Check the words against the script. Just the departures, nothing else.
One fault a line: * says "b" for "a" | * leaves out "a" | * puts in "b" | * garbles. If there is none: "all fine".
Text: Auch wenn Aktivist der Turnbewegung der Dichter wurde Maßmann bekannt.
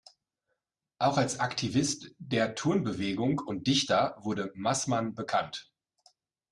* says "als" for "wenn"
* says "und" for "der"